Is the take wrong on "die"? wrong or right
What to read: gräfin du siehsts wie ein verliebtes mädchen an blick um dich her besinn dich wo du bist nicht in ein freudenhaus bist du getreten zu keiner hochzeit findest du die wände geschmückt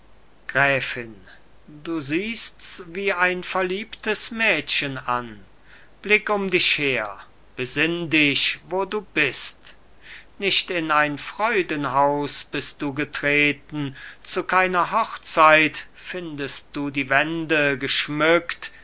right